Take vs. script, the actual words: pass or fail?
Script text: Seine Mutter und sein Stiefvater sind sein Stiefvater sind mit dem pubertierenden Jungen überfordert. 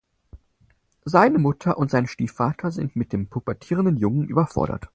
fail